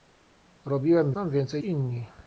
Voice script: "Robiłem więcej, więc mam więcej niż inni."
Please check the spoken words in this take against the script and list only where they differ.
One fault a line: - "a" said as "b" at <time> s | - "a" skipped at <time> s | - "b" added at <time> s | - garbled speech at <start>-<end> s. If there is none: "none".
- "więcej więc" skipped at 1.1 s
- "niż" skipped at 1.6 s